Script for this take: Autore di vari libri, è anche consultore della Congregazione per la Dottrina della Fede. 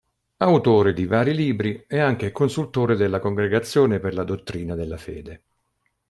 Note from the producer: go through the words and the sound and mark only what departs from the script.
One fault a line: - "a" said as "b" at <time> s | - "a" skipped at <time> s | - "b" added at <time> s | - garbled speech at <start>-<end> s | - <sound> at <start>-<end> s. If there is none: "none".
none